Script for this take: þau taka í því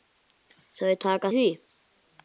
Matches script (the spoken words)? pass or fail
pass